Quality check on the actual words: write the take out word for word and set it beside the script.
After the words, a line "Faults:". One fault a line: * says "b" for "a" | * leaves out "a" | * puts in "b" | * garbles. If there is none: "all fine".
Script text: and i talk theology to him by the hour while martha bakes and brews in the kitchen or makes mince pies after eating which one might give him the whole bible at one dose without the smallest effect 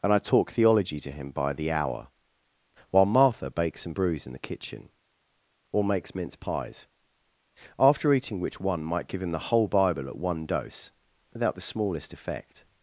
and i talk theology to him by the hour while martha bakes and brews in the kitchen or makes mince pies after eating which one might give him the whole bible at one dose without the smallest effect
Faults:
all fine